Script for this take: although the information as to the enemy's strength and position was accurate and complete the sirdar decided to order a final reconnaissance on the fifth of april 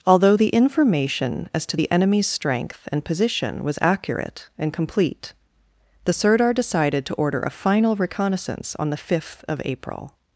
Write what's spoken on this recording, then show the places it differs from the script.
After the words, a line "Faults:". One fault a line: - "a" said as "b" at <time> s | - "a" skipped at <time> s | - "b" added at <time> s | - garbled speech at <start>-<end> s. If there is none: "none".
although the information as to the enemy's strength and position was accurate and complete the sirdar decided to order a final reconnaissance on the fifth of april
Faults:
none